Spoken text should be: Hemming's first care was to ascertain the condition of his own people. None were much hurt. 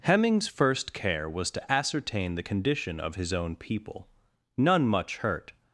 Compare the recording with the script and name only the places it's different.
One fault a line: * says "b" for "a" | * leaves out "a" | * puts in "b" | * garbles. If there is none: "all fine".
* leaves out "were"